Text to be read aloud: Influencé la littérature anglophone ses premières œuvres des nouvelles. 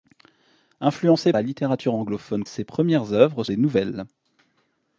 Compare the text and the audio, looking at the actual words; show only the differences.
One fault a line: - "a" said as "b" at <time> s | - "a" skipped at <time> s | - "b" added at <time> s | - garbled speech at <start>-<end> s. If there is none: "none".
none